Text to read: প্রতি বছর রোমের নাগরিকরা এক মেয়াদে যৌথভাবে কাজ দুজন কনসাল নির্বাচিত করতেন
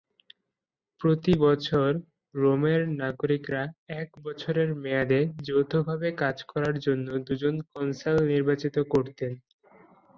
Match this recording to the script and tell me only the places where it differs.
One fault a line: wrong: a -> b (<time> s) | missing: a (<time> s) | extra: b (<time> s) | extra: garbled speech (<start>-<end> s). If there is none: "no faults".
extra: বছরের (4.2 s)
extra: করার জন্য (6.5 s)